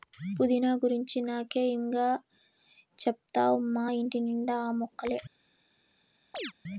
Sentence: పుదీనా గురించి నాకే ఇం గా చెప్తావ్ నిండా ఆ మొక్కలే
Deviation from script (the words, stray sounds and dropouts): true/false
true